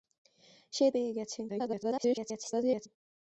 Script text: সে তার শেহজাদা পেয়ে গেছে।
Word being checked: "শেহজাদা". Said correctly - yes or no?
no